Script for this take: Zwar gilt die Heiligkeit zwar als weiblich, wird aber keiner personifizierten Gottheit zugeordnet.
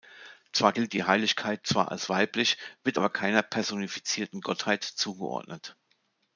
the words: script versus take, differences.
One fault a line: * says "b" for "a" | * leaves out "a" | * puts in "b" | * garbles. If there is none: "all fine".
all fine